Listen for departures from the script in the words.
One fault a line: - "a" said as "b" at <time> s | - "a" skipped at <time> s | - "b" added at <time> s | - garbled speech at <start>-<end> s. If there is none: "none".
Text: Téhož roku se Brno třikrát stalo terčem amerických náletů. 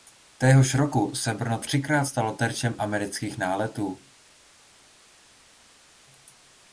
none